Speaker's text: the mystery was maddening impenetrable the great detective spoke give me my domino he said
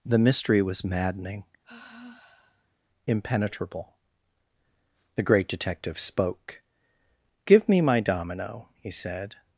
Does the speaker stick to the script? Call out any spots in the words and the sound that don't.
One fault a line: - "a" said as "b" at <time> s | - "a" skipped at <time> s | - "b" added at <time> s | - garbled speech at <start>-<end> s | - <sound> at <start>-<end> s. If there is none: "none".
- sigh at 1.6-2.8 s